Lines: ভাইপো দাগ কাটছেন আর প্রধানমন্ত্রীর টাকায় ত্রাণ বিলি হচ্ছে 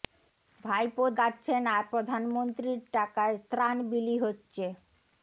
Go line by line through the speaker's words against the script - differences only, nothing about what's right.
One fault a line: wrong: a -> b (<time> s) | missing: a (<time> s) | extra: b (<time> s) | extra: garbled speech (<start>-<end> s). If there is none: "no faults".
missing: দাগ (1.0 s)